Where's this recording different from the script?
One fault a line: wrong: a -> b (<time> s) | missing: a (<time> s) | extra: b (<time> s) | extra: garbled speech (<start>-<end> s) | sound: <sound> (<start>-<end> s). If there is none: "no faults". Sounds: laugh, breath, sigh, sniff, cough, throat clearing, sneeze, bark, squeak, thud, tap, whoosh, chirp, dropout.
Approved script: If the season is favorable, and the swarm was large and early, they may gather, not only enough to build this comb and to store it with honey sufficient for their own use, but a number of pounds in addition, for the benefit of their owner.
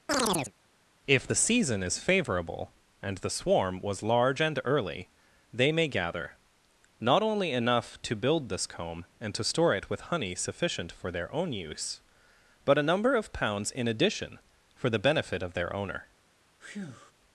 sound: chirp (0.1-0.5 s)
sound: breath (16.6-17.1 s)